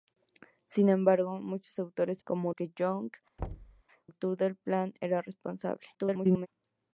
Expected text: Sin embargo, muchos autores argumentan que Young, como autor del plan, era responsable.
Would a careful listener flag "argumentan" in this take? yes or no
yes